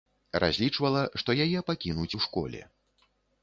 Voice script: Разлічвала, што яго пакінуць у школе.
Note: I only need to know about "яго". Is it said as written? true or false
false